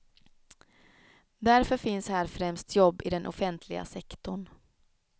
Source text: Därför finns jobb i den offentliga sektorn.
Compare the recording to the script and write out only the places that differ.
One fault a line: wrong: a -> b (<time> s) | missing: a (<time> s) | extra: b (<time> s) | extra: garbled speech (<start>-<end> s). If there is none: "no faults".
extra: här främst (2.1 s)